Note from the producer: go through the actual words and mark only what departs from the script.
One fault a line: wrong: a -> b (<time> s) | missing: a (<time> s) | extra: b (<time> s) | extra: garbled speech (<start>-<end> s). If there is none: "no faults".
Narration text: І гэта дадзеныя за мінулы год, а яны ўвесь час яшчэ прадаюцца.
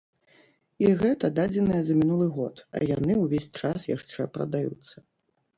no faults